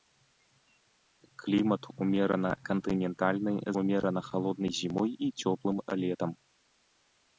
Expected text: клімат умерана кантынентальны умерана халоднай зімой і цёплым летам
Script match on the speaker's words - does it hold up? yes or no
yes